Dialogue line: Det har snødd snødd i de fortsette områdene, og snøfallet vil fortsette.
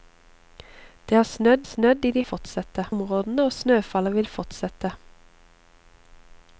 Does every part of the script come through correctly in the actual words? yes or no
yes